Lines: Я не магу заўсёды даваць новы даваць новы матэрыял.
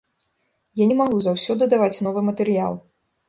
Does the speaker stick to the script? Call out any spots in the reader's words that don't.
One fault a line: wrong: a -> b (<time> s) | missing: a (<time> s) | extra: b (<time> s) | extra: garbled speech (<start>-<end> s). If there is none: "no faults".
missing: даваць новы (2.3 s)